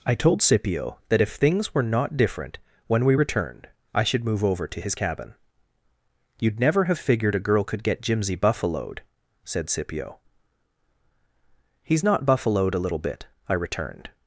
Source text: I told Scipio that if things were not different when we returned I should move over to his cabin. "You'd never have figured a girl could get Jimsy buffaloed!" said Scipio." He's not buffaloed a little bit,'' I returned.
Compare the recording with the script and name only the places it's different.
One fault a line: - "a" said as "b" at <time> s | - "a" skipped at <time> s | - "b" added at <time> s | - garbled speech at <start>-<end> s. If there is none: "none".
none